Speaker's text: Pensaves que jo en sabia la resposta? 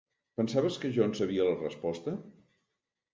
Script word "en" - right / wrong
right